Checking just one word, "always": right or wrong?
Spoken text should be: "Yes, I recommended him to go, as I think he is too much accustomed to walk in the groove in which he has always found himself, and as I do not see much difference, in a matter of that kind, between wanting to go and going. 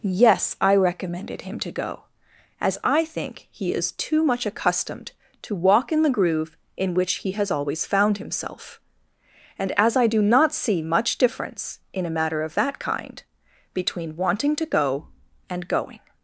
right